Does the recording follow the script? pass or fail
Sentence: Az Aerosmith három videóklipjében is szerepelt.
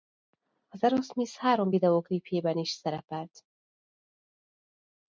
pass